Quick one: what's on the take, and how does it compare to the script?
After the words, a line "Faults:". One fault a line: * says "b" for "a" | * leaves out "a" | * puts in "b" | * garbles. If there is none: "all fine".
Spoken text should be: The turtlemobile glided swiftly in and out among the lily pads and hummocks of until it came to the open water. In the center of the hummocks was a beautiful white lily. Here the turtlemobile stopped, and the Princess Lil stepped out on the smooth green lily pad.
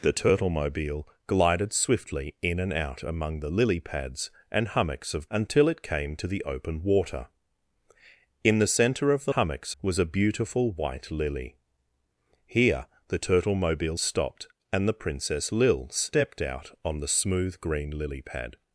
The turtlemobile glided swiftly in and out among the lily pads and hummocks of until it came to the open water. In the center of the hummocks was a beautiful white lily. Here the turtlemobile stopped, and the Princess Lil stepped out on the smooth green lily pad.
Faults:
all fine